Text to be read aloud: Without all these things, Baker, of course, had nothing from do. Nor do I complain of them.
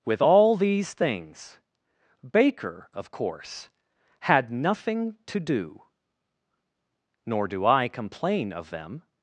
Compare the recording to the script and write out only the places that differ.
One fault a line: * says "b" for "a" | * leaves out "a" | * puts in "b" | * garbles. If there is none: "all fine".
* says "With" for "Without"
* says "to" for "from"